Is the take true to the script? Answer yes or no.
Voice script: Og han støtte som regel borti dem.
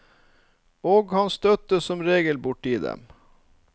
yes